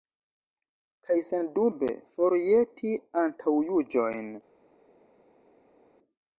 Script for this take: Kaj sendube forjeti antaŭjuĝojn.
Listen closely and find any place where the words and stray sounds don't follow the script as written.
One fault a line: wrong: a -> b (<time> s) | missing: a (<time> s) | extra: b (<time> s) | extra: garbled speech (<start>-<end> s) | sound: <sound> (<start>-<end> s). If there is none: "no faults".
no faults